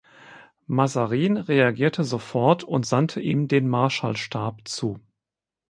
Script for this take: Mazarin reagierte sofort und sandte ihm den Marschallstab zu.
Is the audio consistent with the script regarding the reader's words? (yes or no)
yes